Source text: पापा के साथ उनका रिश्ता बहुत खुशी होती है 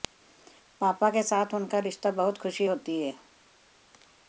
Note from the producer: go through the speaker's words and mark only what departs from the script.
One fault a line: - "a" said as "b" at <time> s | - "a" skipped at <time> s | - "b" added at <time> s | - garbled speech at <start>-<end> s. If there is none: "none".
none